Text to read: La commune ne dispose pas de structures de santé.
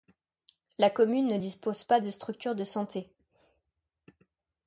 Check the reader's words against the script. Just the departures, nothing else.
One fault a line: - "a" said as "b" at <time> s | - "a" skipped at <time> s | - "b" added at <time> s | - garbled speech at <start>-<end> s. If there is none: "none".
none